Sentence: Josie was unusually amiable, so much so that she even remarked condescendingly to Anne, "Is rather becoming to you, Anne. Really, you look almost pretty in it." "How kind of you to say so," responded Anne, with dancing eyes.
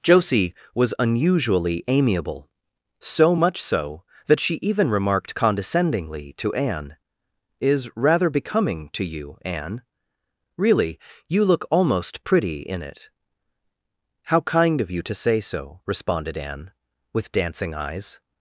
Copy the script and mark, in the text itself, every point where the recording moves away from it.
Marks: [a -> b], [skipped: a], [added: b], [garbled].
Josie was unusually amiable, so much so that she even remarked condescendingly to Anne, "Is rather becoming to you, Anne. Really, you look almost pretty in it." "How kind of you to say so," responded Anne, with dancing eyes.